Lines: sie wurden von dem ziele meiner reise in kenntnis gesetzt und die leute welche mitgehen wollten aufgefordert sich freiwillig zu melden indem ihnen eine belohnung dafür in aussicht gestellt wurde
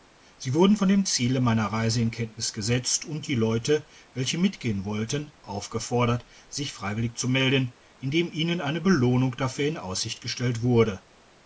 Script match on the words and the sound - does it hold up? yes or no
yes